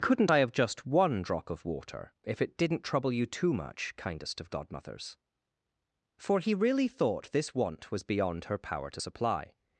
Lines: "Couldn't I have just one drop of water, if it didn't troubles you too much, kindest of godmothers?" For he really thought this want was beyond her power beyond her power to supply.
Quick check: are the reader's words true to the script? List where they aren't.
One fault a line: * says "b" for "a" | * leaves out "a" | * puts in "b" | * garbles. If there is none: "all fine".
* says "trouble" for "troubles"
* leaves out "beyond her power"